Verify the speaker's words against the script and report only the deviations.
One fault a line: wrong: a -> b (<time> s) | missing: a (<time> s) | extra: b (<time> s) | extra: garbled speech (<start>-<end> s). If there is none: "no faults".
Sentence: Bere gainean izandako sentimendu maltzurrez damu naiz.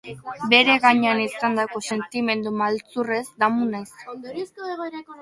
no faults